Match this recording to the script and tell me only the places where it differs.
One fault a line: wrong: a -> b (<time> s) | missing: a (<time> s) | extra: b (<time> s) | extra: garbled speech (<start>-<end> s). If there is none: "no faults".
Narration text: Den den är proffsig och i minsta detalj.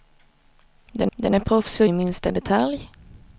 no faults